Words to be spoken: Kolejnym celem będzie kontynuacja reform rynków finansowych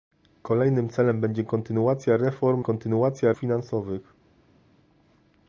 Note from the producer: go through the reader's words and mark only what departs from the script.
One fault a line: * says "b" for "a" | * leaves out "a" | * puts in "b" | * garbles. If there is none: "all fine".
* says "kontynuacja" for "rynków"